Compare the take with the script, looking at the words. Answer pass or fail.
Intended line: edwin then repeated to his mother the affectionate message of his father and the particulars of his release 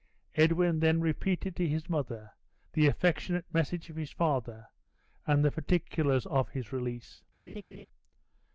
pass